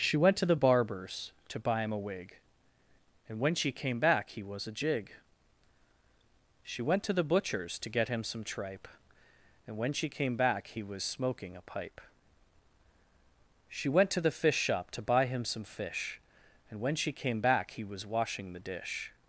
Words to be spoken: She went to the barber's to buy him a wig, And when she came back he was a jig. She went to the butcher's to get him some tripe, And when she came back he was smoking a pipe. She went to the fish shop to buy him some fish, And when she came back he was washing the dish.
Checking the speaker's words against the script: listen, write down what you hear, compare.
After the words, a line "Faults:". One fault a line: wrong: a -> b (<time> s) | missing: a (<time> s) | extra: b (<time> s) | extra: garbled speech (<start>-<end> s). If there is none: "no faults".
She went to the barber's to buy him a wig, And when she came back he was a jig. She went to the butcher's to get him some tripe, And when she came back he was smoking a pipe. She went to the fish shop to buy him some fish, And when she came back he was washing the dish.
Faults:
no faults